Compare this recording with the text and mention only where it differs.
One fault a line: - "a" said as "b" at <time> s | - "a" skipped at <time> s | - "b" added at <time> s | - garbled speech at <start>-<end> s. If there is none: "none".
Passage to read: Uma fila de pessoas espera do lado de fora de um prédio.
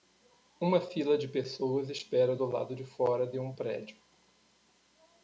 none